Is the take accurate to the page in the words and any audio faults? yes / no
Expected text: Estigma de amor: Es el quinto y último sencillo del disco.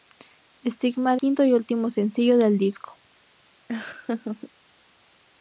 no